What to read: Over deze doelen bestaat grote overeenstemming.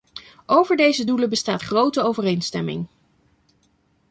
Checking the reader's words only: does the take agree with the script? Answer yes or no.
yes